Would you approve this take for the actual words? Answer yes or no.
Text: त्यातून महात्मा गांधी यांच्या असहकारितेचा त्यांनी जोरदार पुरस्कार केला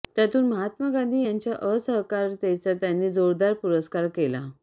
yes